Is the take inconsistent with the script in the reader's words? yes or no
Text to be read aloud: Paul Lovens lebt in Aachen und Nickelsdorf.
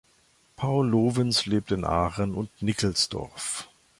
no